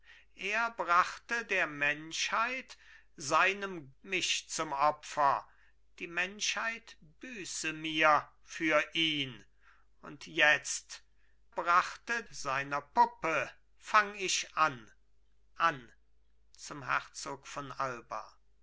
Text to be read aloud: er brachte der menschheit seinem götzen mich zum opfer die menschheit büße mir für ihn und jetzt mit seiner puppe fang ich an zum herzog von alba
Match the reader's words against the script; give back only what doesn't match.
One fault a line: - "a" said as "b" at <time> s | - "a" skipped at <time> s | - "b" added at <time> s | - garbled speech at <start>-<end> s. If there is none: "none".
- "götzen" skipped at 3.9 s
- "mit" said as "brachte" at 11.5 s
- "an" added at 15.6 s